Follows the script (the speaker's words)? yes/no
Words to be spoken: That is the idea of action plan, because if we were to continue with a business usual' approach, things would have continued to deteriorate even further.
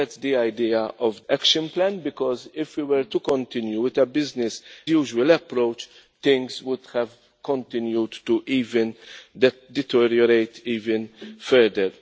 yes